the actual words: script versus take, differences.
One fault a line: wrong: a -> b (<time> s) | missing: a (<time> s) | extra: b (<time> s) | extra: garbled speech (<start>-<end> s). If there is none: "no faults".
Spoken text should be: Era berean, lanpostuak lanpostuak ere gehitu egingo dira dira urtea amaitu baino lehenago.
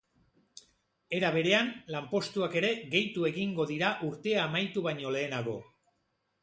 missing: lanpostuak (2.6 s)
missing: dira (3.9 s)